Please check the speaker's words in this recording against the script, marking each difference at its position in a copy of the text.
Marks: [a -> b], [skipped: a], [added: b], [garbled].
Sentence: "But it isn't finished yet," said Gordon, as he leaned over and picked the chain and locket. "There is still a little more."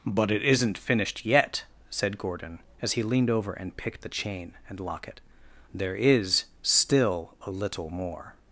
"But it isn't finished yet," said Gordon, as he leaned over and picked the chain and locket. "There is still a little more."